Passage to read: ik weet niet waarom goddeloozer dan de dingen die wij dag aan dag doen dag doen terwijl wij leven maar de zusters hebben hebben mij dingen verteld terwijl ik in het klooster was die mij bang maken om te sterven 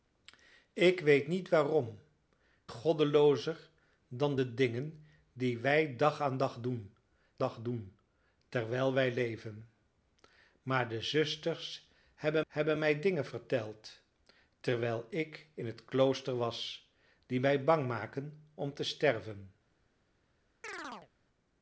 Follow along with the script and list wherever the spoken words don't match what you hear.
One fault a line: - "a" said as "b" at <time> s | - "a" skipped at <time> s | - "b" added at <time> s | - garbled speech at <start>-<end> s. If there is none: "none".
none